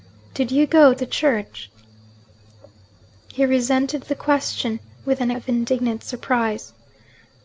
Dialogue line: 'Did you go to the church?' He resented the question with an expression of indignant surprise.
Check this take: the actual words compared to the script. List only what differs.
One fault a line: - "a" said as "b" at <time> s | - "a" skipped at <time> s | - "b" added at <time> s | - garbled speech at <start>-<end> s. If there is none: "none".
- "to" skipped at 0.9 s
- "expression" skipped at 5.3 s